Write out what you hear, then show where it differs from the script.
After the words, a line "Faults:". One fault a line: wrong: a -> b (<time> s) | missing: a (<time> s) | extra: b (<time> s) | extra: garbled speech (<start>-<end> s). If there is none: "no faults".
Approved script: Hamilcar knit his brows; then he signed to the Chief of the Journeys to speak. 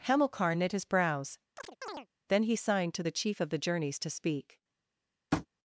Hamilcar knit his brows; then he signed to the Chief of the Journeys to speak.
Faults:
no faults